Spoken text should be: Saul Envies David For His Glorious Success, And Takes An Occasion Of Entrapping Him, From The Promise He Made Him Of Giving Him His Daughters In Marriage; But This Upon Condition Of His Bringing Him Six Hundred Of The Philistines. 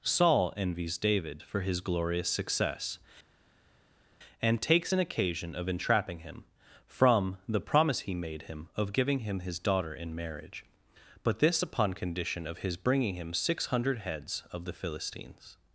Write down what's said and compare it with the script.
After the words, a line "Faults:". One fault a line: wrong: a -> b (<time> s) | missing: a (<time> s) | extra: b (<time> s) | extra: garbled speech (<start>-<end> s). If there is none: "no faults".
Saul Envies David For His Glorious Success, And Takes An Occasion Of Entrapping Him, From The Promise He Made Him Of Giving Him His Daughter In Marriage; But This Upon Condition Of His Bringing Him Six Hundred Heads Of The Philistines.
Faults:
wrong: Daughters -> Daughter (9.6 s)
extra: Heads (14.0 s)